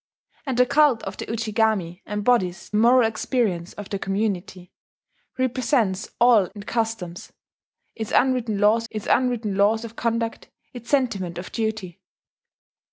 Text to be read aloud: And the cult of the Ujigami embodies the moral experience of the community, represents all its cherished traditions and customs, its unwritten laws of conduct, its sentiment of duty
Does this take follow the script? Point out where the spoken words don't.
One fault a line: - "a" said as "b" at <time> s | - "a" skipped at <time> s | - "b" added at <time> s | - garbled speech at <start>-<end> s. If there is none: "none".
- "the" skipped at 2.7 s
- "its cherished traditions and customs" said as "and customs its unwritten laws" at 6.6 s